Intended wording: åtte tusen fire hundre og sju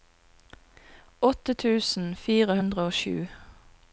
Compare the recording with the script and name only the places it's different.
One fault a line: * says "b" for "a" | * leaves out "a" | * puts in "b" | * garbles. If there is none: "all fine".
all fine